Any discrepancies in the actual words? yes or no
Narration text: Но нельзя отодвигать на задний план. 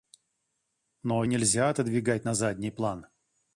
no